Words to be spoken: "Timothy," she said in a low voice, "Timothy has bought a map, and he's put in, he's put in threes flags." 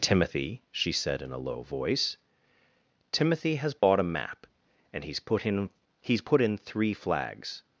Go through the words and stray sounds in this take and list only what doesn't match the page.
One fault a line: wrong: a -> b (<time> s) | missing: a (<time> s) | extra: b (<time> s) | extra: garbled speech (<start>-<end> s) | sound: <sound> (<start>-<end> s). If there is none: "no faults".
sound: dropout (3.8-3.8 s)
wrong: threes -> three (6.6 s)